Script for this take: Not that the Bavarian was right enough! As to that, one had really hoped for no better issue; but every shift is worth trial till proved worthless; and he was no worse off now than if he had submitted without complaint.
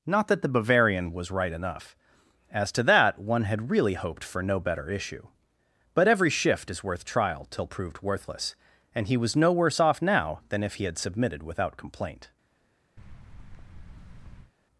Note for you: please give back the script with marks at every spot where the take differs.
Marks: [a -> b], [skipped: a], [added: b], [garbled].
Not that the Bavarian was right enough! As to that, one had really hoped for no better issue; but every shift is worth trial till proved worthless; and he was no worse off now than if he had submitted without complaint.